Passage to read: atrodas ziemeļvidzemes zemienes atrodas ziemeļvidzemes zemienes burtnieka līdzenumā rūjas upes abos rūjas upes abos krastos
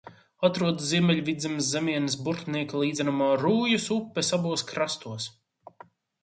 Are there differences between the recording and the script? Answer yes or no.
yes